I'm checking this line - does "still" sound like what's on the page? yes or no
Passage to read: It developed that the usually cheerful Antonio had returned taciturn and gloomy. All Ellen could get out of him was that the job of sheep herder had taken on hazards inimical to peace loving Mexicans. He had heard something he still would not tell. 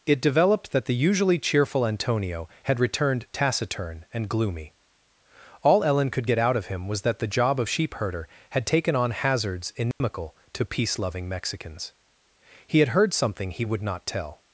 no